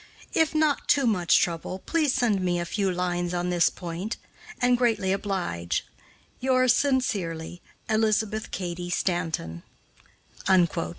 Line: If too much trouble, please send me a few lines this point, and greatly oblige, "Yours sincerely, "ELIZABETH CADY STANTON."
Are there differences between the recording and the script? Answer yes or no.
yes